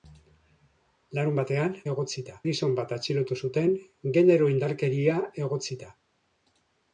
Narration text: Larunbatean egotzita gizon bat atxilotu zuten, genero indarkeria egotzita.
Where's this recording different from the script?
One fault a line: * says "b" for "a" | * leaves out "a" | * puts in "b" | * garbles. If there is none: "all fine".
all fine